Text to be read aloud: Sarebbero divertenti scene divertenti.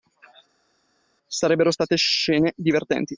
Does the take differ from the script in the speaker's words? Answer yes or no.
yes